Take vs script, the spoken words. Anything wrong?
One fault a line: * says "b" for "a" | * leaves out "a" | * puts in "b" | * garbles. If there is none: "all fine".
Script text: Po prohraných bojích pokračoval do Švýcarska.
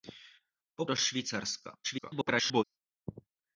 * leaves out "prohraných bojích pokračoval"
* garbles